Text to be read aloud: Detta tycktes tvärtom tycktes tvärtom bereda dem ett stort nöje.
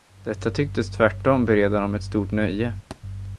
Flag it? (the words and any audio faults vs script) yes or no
yes